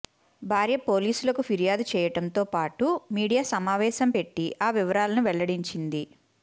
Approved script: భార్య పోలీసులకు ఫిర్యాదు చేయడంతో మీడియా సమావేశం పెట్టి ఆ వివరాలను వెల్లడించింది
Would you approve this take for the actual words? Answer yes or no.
no